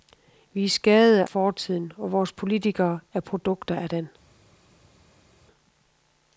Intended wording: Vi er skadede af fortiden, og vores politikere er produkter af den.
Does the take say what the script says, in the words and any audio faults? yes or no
no